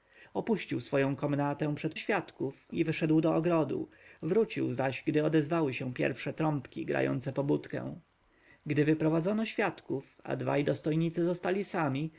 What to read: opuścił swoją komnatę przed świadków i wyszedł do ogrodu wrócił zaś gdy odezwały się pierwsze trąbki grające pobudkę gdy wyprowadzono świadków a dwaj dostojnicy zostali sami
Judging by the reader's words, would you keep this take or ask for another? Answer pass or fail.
pass